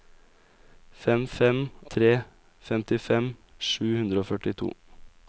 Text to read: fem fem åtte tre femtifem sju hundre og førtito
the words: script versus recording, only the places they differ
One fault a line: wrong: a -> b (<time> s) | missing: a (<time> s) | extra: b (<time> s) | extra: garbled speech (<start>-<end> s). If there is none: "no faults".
missing: åtte (1.6 s)